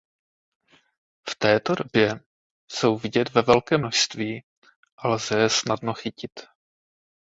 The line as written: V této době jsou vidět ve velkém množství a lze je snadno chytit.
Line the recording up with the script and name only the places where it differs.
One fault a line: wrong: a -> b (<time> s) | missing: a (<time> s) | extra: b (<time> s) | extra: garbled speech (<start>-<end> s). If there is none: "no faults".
no faults